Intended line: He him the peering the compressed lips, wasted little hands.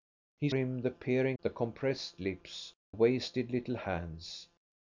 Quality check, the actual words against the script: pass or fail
pass